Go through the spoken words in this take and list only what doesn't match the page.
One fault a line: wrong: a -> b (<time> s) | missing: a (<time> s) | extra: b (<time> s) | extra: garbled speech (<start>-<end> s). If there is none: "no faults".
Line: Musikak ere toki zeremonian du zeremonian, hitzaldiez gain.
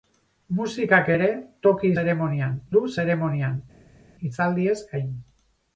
no faults